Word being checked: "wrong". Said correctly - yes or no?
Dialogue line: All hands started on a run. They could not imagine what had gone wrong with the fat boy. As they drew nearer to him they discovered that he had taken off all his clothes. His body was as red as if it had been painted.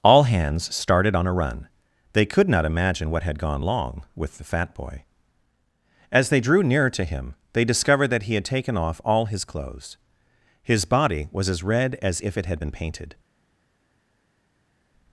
no